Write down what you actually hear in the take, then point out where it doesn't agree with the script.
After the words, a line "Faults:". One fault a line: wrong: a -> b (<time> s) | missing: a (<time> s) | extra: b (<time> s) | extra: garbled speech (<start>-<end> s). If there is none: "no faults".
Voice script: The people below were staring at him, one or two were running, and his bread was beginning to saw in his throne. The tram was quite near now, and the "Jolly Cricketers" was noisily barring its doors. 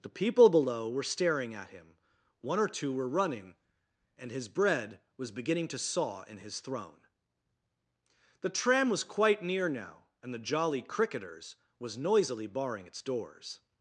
The people below were staring at him, one or two were running, and his bread was beginning to saw in his throne. The tram was quite near now, and the "Jolly Cricketers" was noisily barring its doors.
Faults:
no faults